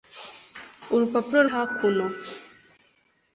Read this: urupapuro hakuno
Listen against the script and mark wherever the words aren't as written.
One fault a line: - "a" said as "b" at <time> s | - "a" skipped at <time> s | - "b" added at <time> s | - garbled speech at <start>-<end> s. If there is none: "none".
none